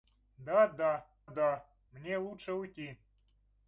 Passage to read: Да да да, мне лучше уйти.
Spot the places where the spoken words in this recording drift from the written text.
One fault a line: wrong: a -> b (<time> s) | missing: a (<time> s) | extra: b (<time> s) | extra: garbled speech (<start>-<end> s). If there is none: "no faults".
no faults